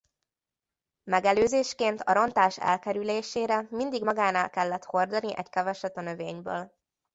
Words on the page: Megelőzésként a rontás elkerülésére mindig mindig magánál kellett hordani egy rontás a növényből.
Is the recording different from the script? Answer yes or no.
yes